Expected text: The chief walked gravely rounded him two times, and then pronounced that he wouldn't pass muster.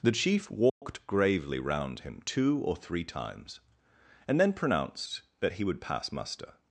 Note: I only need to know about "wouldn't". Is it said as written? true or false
false